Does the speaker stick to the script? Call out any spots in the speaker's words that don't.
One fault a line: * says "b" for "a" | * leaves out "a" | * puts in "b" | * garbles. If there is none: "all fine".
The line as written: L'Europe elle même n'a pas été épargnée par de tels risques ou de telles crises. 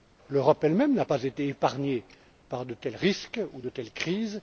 all fine